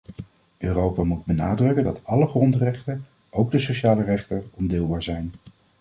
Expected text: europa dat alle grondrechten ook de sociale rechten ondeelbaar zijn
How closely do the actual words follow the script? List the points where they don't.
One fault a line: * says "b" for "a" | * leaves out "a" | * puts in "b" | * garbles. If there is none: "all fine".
* puts in "moet benadrukken"